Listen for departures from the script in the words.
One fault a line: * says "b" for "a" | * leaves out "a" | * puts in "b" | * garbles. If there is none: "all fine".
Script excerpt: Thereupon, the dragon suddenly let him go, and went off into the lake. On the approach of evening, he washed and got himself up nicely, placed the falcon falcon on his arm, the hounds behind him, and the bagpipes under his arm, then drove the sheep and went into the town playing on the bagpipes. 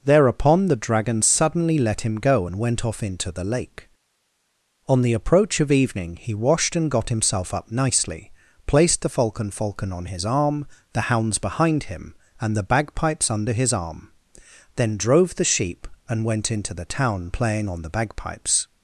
all fine